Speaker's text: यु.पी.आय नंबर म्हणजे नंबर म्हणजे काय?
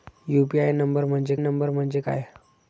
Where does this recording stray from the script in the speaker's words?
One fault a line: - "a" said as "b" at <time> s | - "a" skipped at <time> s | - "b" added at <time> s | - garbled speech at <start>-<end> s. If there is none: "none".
none